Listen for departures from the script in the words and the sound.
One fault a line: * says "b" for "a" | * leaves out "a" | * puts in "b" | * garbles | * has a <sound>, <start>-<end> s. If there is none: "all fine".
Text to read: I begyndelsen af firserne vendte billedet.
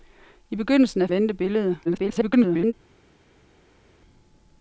* leaves out "firserne"
* garbles